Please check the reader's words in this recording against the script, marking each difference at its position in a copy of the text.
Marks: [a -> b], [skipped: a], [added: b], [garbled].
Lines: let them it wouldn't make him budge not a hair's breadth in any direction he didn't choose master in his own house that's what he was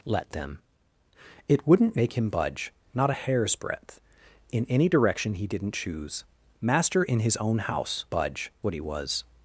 let them it wouldn't make him budge not a hair's breadth in any direction he didn't choose master in his own house [that's -> budge] what he was